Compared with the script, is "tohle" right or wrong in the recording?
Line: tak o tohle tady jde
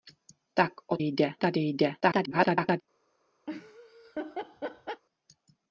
wrong